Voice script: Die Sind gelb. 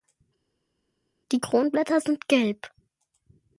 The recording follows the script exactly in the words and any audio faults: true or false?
false